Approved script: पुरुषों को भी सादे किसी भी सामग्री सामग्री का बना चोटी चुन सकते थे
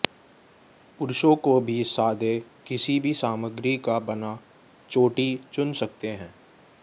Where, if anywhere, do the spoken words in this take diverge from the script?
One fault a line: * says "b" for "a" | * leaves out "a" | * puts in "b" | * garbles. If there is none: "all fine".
* leaves out "सामग्री"
* says "हैं" for "थे"